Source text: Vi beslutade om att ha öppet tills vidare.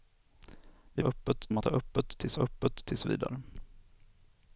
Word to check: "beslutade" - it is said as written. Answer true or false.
false